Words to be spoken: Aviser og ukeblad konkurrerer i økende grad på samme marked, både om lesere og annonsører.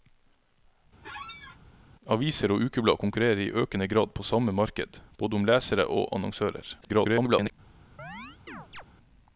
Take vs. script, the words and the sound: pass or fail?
fail